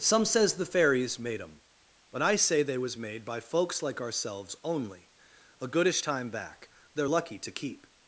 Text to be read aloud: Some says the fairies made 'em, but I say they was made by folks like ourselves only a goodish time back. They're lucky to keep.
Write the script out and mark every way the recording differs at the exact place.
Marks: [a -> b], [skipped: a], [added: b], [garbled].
Some says the fairies made 'em, but I say they was made by folks like ourselves only a goodish time back. They're lucky to keep.